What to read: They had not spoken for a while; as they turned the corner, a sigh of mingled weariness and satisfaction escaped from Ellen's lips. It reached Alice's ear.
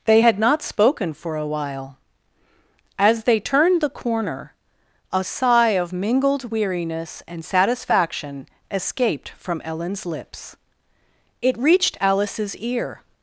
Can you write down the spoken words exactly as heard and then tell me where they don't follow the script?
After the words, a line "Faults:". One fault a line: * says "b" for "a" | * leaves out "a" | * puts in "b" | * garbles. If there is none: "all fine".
They had not spoken for a while; as they turned the corner, a sigh of mingled weariness and satisfaction escaped from Ellen's lips. It reached Alice's ear.
Faults:
all fine